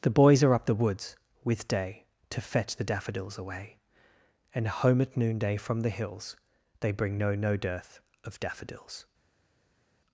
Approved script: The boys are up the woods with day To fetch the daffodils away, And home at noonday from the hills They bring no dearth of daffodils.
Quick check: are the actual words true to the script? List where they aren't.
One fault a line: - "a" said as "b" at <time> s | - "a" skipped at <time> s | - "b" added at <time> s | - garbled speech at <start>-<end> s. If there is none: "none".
- "no" added at 7.3 s